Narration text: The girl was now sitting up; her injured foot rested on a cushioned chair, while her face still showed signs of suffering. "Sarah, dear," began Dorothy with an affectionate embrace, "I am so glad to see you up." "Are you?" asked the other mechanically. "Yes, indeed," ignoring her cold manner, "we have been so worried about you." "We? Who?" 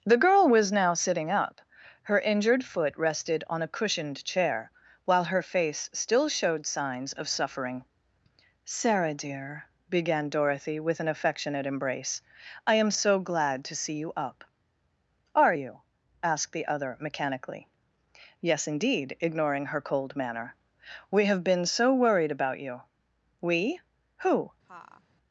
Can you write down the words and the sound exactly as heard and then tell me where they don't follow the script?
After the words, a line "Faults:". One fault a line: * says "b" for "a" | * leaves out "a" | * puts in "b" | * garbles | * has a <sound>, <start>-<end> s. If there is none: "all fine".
The girl was now sitting up; her injured foot rested on a cushioned chair, while her face still showed signs of suffering. "Sarah, dear," began Dorothy with an affectionate embrace, "I am so glad to see you up." "Are you?" asked the other mechanically. "Yes, indeed," ignoring her cold manner, "we have been so worried about you." "We? Who?"
Faults:
* has a laugh, 24.6-25.0 s